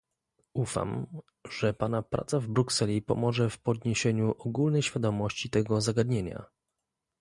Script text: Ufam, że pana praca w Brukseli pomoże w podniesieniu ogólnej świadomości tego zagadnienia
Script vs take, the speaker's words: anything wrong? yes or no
no